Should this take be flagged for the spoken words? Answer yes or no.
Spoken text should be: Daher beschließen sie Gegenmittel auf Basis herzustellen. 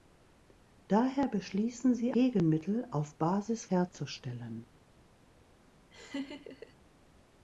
no